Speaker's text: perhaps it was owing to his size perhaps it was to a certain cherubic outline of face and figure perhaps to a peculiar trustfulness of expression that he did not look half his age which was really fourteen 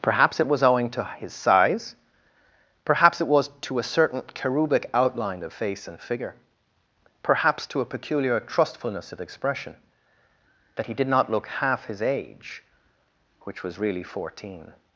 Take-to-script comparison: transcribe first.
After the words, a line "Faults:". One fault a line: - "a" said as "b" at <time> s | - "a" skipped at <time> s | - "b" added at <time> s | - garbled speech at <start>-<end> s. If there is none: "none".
perhaps it was owing to his size perhaps it was to a certain cherubic outline of face and figure perhaps to a peculiar trustfulness of expression that he did not look half his age which was really fourteen
Faults:
none